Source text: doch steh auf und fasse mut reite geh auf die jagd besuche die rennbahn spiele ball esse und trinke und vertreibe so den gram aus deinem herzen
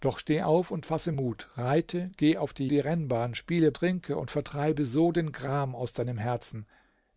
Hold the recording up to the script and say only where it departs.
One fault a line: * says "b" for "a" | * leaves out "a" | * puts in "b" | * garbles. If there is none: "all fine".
* leaves out "jagd besuche"
* leaves out "ball esse und"